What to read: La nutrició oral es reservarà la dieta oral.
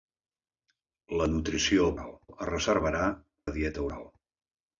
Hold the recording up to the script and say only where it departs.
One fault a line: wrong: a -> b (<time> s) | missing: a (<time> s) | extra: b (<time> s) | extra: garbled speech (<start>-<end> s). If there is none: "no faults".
no faults